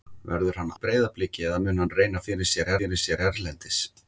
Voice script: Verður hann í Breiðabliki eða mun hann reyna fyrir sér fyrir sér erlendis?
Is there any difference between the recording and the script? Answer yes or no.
no